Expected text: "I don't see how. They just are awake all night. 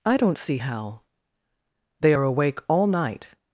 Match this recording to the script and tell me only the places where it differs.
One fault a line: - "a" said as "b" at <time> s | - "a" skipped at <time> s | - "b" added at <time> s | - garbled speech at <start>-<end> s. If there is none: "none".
- "just" skipped at 2.1 s